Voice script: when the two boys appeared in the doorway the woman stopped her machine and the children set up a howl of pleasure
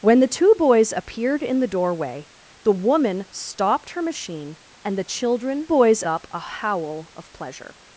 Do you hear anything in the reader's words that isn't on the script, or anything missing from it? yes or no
yes